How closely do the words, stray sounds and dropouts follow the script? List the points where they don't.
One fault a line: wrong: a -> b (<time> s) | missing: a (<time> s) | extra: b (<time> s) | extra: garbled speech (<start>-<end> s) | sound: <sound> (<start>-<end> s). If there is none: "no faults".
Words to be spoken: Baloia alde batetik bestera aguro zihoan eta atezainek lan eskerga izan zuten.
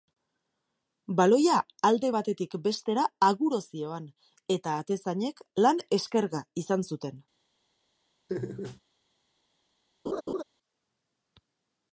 sound: laugh (8.3-8.8 s)
sound: laugh (10.1-10.4 s)